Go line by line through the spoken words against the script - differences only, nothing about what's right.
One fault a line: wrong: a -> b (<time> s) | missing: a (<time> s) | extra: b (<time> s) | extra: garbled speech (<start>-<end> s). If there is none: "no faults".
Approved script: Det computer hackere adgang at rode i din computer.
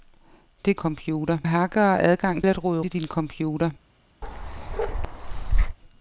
no faults